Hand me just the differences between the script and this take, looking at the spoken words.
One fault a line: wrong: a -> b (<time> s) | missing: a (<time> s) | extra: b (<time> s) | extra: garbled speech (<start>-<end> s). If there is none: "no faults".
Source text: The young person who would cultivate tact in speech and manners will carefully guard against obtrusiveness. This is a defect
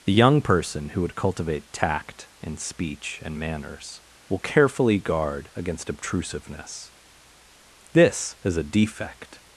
no faults